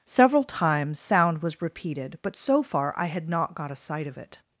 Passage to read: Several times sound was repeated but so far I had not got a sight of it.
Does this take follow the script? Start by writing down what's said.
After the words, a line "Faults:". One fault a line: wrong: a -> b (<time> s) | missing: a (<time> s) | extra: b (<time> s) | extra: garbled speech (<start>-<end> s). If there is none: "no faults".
Several times sound was repeated but so far I had not got a sight of it.
Faults:
no faults